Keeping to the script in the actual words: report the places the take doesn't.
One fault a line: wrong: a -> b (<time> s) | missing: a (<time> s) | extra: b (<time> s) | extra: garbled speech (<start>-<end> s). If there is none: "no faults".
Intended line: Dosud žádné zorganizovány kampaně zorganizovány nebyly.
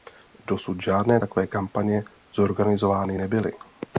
wrong: zorganizovány -> takové (1.1 s)